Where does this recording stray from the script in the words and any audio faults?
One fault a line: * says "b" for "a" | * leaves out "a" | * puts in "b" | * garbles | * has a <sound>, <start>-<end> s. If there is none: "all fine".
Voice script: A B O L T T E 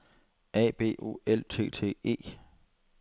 all fine